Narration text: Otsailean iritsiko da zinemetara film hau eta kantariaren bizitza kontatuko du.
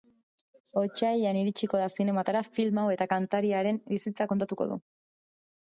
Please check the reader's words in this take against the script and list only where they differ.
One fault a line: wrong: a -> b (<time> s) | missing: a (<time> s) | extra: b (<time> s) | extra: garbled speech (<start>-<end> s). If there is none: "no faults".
no faults